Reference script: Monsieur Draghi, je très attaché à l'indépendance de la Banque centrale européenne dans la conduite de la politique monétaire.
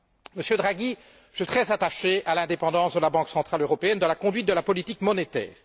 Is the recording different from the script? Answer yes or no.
no